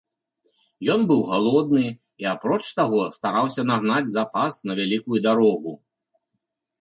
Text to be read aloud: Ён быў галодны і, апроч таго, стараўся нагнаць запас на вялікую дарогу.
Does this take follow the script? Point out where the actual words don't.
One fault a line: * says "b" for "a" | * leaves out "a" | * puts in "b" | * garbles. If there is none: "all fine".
all fine